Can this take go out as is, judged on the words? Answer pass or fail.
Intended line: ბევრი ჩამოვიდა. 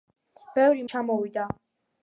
pass